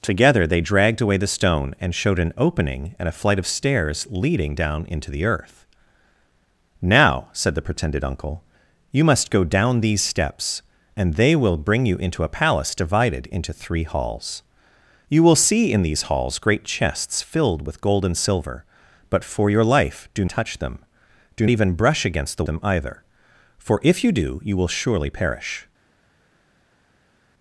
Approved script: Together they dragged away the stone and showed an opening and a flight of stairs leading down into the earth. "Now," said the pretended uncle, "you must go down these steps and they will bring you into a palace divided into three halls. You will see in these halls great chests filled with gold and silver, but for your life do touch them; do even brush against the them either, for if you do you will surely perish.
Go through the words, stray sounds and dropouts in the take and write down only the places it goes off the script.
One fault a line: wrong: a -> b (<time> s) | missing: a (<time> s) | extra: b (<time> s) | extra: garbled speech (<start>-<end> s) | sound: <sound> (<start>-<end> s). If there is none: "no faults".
no faults